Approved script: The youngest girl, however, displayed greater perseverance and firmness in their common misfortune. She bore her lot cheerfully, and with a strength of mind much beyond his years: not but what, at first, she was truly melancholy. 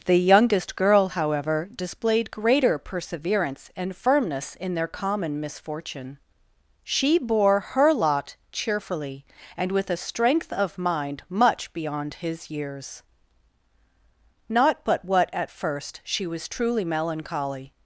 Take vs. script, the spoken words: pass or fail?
pass